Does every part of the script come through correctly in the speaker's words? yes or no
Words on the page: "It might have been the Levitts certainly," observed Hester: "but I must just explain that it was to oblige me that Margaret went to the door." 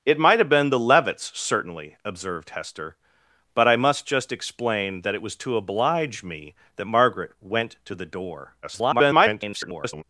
no